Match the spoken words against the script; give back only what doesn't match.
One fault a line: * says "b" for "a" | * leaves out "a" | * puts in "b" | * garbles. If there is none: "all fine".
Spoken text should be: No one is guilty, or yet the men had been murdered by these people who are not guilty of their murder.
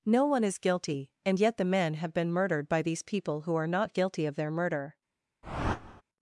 * says "and" for "or"
* says "have" for "had"